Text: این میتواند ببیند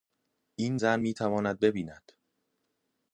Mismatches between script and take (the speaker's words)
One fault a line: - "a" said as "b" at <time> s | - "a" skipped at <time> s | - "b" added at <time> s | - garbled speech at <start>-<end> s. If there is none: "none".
- "زن" added at 0.7 s